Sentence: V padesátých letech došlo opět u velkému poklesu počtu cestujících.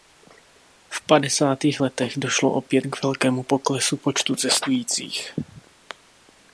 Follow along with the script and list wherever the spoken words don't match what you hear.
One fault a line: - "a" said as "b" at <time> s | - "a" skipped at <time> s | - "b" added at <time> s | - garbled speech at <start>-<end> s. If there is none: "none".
- "u" said as "k" at 2.8 s